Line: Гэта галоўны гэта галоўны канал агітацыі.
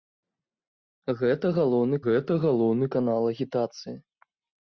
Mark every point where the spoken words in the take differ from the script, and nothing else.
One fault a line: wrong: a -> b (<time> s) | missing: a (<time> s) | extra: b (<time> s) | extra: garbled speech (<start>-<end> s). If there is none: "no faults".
no faults